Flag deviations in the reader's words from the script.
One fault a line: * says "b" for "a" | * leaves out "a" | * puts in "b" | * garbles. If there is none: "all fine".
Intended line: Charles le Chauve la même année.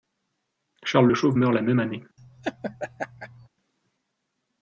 * puts in "meurt"